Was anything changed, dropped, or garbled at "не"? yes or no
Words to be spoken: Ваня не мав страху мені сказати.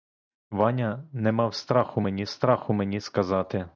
no